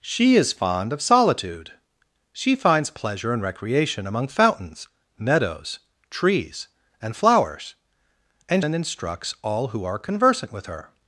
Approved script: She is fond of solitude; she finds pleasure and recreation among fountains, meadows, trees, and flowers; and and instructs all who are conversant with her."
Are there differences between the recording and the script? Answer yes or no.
no